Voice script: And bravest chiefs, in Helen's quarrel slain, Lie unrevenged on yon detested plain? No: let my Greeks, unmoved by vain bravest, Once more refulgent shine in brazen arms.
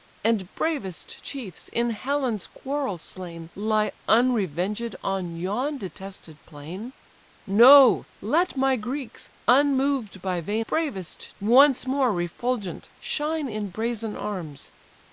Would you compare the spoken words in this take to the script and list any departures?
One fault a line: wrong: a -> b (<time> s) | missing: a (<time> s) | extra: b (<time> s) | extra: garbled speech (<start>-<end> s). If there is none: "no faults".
no faults